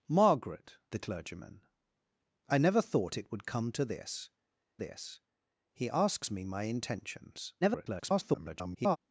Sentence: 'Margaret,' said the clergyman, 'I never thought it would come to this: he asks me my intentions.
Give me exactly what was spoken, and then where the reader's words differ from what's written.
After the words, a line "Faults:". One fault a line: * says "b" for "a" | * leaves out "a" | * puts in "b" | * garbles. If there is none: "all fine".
'Margaret,' the clergyman, 'I never thought it would come to this this: he asks me my intentions. [garbled]
Faults:
* leaves out "said"
* puts in "this"
* garbles